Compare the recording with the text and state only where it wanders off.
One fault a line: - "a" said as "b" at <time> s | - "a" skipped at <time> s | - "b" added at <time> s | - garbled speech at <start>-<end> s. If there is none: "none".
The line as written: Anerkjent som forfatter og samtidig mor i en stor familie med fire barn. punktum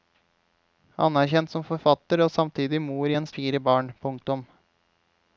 - "stor familie med" skipped at 3.3 s